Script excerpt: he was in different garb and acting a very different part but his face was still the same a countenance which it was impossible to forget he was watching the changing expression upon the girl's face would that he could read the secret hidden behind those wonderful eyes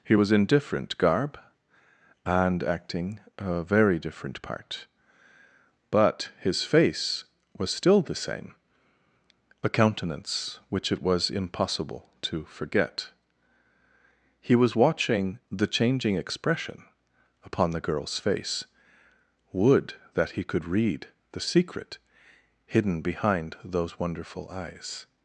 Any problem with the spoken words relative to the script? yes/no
no